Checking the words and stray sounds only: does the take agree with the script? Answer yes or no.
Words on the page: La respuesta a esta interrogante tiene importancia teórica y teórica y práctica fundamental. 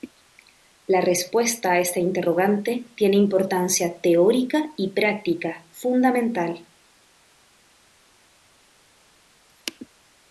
no